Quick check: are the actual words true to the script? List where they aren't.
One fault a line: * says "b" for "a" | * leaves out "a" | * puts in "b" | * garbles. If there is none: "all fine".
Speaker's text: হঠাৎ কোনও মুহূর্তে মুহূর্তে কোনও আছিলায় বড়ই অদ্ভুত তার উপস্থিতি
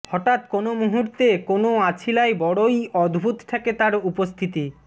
* leaves out "মুহূর্তে"
* puts in "ঠেকে"